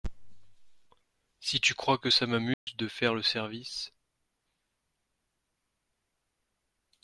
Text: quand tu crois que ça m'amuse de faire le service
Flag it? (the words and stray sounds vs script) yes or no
yes